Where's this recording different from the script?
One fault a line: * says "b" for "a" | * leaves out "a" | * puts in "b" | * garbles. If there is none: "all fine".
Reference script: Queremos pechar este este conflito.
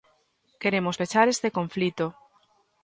* leaves out "este"